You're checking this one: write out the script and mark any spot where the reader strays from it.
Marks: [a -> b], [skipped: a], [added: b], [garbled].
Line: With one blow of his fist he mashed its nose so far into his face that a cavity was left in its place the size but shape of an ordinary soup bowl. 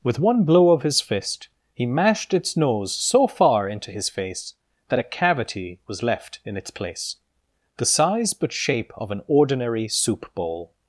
With one blow of his fist he mashed its nose so far into his face that a cavity was left in its place the size but shape of an ordinary soup bowl.